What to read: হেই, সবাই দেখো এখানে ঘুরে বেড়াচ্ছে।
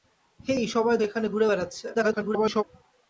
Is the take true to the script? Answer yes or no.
no